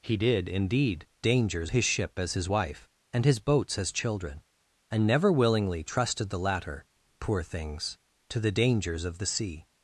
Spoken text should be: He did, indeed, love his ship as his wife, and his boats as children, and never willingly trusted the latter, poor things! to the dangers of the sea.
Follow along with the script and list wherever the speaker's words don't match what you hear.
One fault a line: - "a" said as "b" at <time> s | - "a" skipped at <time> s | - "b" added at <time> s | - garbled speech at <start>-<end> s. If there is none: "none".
- "love" said as "dangers" at 1.2 s